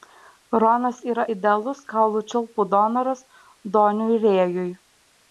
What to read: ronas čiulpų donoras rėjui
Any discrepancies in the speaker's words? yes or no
yes